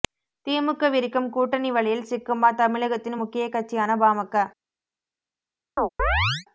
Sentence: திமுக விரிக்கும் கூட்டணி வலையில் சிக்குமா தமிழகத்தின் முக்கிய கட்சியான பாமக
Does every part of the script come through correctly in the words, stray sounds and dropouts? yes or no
no